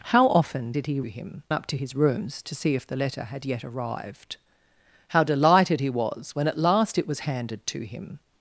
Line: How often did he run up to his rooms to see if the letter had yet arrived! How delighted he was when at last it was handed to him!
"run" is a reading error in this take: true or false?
true